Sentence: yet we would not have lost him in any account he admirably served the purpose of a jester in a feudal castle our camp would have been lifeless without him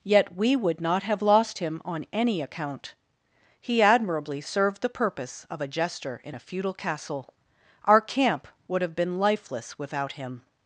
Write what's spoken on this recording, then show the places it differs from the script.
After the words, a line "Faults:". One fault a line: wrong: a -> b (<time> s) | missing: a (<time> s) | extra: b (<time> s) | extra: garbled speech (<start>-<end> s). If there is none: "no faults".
yet we would not have lost him on any account he admirably served the purpose of a jester in a feudal castle our camp would have been lifeless without him
Faults:
wrong: in -> on (1.8 s)